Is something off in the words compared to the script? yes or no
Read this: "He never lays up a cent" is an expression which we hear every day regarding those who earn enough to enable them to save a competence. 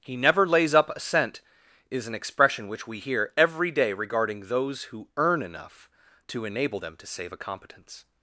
no